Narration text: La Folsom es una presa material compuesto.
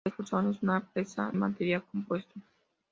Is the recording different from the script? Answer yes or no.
no